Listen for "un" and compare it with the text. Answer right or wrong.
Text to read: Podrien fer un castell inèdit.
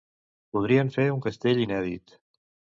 right